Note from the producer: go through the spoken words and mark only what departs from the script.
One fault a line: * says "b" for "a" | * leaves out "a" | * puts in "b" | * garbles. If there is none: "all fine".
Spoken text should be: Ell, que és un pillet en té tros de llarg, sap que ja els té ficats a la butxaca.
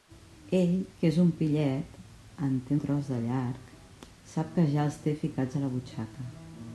all fine